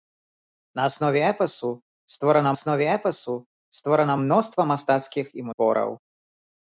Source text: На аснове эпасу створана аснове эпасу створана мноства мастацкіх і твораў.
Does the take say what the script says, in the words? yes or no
yes